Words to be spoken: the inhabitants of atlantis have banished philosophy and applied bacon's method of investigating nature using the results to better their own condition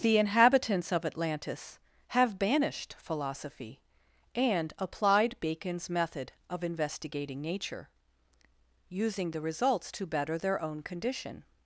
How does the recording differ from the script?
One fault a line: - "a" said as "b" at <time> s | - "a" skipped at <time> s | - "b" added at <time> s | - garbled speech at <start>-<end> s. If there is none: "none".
none